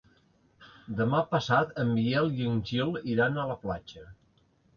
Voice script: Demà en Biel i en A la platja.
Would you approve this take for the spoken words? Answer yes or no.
no